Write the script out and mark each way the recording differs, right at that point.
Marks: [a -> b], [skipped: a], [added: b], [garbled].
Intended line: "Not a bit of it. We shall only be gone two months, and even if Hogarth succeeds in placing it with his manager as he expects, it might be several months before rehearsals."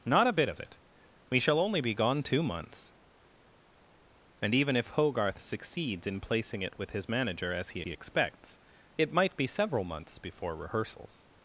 "Not a bit of it. We shall only be gone two months, and even if Hogarth succeeds in placing it with his manager as he [added: he] expects, it might be several months before rehearsals."